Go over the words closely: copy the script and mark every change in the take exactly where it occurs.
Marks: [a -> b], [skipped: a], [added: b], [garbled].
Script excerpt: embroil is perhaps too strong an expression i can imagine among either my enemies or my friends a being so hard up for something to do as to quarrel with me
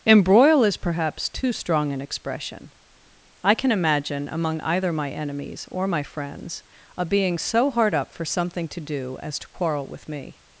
embroil is perhaps too strong an expression i can imagine among either my enemies or my friends a being so hard up for something to do as to quarrel with me